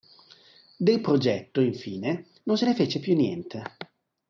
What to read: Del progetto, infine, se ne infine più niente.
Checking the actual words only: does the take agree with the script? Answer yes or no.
no